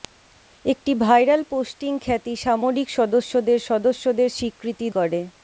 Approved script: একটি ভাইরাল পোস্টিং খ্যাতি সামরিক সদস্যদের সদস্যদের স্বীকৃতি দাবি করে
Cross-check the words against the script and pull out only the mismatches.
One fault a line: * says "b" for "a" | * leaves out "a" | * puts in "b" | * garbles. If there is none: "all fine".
* leaves out "দাবি"